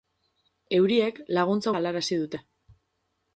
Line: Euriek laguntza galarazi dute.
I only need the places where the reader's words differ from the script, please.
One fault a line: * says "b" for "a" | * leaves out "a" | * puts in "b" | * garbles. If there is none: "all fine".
all fine